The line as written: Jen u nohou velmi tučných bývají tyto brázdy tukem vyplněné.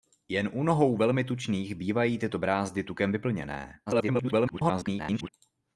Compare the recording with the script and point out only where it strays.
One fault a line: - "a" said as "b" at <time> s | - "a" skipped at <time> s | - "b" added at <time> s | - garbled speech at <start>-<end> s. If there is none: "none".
- garbled speech at 3.9-5.3 s